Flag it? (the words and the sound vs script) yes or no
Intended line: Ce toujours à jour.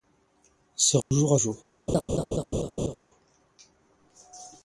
yes